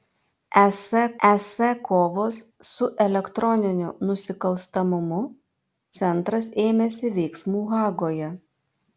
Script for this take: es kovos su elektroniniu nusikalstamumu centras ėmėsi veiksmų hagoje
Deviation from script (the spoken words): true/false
true